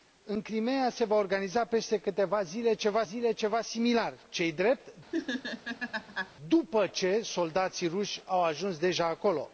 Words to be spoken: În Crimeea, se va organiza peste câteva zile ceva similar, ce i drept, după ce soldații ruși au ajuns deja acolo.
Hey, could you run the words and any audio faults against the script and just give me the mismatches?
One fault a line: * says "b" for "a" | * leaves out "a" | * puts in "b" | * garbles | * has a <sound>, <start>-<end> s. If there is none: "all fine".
* puts in "zile ceva"
* has a laugh, 5.1-6.3 s